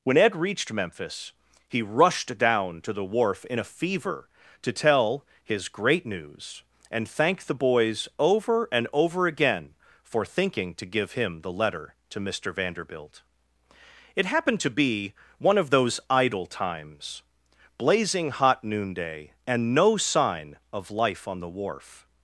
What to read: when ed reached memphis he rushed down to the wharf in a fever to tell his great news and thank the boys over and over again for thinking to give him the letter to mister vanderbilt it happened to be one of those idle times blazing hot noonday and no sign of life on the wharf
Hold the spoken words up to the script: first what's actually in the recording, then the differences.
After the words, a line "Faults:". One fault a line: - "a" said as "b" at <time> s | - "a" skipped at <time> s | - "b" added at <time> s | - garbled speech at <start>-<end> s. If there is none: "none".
when ed reached memphis he rushed down to the wharf in a fever to tell his great news and thank the boys over and over again for thinking to give him the letter to mister vanderbilt it happened to be one of those idle times blazing hot noonday and no sign of life on the wharf
Faults:
none